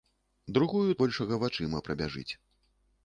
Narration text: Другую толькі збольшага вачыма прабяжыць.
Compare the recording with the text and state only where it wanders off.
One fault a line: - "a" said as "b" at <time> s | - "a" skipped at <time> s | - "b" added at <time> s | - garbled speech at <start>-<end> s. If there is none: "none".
- "толькі" skipped at 0.9 s